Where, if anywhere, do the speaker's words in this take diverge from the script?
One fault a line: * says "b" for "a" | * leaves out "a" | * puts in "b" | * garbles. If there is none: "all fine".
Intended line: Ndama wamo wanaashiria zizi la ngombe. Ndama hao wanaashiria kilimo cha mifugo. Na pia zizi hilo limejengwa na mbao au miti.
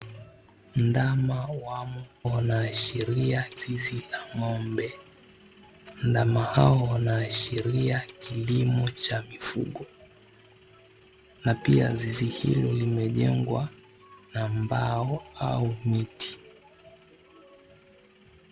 all fine